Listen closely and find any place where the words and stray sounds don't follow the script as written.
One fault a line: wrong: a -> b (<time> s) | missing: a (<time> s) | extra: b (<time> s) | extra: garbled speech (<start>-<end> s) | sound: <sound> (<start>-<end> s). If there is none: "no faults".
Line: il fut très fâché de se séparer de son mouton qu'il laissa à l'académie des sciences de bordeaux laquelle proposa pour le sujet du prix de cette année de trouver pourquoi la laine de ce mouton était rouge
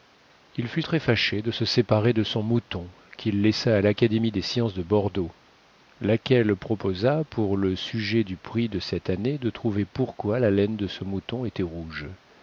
no faults